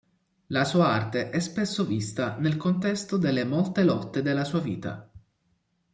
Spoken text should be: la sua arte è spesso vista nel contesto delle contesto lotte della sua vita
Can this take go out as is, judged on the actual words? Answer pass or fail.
fail